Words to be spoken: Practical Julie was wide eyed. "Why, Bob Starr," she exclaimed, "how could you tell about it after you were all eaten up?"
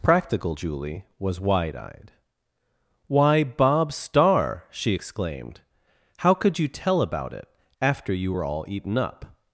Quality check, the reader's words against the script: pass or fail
pass